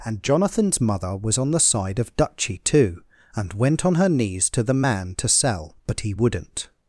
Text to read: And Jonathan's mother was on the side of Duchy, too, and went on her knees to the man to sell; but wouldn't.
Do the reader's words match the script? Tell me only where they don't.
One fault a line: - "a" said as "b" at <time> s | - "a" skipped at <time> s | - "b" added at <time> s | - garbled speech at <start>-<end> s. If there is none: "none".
- "he" added at 6.0 s